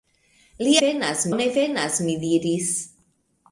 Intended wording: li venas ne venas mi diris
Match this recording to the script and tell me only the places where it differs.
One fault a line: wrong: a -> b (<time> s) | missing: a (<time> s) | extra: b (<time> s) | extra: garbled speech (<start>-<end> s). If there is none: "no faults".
no faults